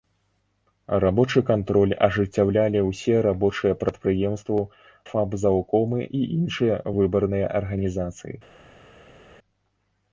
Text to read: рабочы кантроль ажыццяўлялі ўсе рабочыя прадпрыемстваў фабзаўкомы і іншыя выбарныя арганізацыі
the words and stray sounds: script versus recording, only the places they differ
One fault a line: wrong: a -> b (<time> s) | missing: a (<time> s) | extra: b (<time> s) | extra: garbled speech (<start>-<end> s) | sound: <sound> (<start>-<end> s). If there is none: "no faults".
no faults